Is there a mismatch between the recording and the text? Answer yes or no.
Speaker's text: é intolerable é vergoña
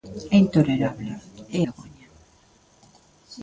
no